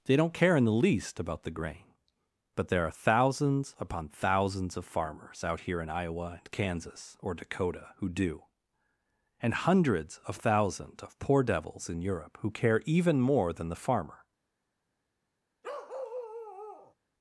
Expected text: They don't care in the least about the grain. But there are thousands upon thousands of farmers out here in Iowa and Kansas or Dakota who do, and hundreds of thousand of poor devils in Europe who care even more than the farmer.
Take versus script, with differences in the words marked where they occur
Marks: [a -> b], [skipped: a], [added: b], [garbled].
They don't care in the least about the grain. But there are thousands upon thousands of farmers out here in Iowa and Kansas or Dakota who do, and hundreds of [thousand -> thousands] of poor devils in Europe who care even more than the farmer.